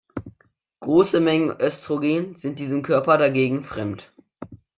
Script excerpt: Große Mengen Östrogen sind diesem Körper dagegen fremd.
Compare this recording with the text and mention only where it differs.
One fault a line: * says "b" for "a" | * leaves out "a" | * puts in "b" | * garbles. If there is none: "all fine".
all fine